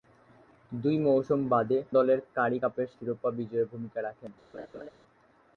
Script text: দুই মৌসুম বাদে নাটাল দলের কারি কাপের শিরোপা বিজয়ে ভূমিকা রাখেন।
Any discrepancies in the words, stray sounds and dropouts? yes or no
yes